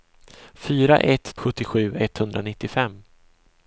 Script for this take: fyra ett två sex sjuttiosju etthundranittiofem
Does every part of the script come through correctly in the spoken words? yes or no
no